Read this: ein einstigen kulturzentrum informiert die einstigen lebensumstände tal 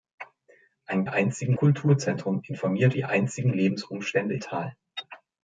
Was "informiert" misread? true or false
false